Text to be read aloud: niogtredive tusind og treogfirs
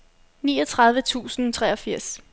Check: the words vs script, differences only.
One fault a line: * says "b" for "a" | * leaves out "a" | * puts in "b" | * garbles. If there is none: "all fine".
all fine